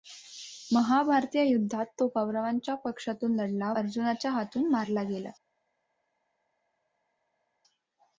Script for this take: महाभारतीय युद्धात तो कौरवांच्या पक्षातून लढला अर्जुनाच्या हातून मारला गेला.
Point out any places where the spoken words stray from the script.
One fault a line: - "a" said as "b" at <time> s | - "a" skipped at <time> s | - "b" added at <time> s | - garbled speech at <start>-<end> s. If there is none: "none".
none